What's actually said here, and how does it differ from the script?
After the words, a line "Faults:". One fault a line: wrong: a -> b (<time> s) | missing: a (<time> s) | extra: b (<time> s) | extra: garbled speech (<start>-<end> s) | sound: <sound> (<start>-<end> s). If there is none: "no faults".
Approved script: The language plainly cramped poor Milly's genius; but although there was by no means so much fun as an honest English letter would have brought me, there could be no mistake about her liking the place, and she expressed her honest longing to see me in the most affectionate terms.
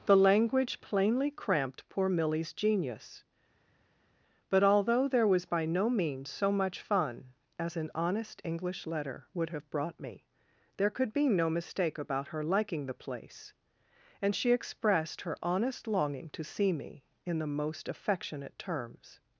The language plainly cramped poor Milly's genius; but although there was by no means so much fun as an honest English letter would have brought me, there could be no mistake about her liking the place, and she expressed her honest longing to see me in the most affectionate terms.
Faults:
no faults